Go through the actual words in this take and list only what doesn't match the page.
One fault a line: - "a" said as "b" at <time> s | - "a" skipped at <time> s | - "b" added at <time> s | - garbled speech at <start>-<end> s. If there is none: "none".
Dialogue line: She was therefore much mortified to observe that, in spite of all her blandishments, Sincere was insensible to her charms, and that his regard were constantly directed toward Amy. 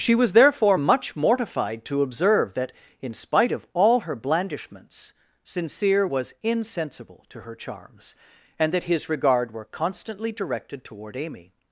none